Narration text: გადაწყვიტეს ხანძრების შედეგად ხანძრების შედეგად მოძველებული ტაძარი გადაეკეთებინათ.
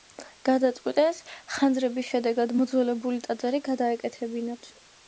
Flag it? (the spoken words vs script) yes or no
yes